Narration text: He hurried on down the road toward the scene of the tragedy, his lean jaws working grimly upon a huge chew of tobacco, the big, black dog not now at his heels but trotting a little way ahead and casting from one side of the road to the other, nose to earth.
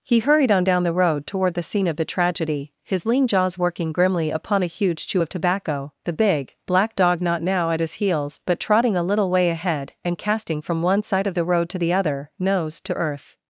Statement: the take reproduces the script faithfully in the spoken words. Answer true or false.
true